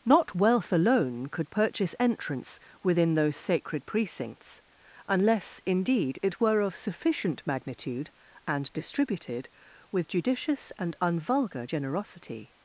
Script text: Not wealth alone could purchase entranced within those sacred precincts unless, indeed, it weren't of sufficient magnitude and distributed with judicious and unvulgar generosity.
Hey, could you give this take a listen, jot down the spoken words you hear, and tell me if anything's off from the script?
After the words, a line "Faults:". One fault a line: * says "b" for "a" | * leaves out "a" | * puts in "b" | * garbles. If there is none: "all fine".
Not wealth alone could purchase entrance within those sacred precincts unless, indeed, it were of sufficient magnitude and distributed with judicious and unvulgar generosity.
Faults:
* says "entrance" for "entranced"
* says "were" for "weren't"